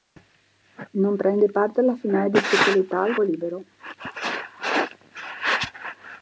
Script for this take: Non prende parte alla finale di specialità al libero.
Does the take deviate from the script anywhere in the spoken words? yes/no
no